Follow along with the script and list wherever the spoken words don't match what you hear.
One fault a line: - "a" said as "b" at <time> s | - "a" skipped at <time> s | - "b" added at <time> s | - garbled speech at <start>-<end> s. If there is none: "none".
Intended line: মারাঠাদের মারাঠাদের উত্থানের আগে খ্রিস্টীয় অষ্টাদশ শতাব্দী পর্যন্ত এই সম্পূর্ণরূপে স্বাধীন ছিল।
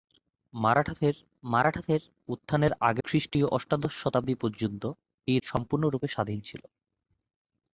none